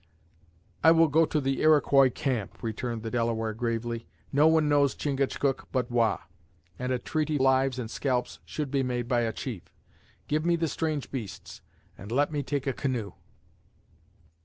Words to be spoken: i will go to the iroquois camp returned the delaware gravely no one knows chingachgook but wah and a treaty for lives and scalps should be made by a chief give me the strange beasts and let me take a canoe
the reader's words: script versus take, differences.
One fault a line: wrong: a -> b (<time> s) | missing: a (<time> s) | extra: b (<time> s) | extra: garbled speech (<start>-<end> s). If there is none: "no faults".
missing: for (7.4 s)